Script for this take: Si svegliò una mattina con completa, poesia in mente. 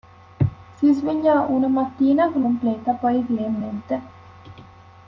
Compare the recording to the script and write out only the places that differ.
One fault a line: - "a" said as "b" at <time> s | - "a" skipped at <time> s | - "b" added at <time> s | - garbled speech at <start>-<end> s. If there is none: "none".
none